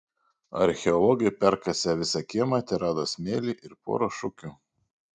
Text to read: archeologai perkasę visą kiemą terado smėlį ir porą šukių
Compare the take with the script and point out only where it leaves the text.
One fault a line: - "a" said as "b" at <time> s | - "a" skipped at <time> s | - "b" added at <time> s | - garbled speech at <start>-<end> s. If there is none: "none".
none